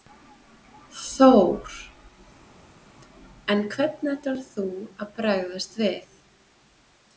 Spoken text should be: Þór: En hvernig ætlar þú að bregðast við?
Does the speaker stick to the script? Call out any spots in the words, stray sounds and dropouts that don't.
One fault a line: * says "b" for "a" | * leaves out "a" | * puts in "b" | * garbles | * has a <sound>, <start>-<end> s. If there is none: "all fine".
all fine